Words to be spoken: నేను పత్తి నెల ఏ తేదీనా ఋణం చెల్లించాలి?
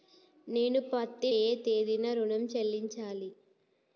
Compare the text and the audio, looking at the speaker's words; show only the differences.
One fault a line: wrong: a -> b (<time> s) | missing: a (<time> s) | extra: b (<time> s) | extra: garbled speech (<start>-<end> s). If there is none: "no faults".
missing: నెల (1.3 s)